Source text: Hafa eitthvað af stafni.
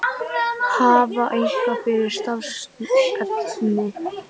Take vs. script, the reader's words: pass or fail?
fail